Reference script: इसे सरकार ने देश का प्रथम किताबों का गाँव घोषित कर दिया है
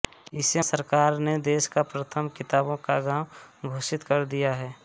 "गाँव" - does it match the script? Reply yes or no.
yes